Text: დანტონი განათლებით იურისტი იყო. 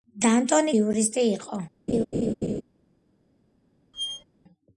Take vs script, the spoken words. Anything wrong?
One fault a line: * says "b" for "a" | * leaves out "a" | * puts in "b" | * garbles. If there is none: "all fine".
* leaves out "განათლებით"